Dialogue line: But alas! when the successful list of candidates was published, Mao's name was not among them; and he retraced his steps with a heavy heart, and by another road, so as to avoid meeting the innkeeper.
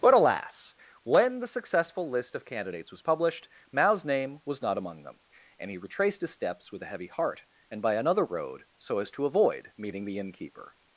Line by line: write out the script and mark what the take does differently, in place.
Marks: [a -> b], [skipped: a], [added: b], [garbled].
But alas! when the successful list of candidates was published, Mao's name was not among them; and he retraced his steps with a heavy heart, and by another road, so as to avoid meeting the innkeeper.